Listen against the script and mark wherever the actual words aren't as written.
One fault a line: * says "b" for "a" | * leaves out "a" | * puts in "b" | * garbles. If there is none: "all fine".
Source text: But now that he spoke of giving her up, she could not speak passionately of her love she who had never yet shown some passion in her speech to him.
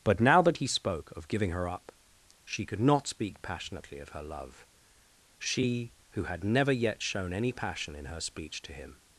* says "any" for "some"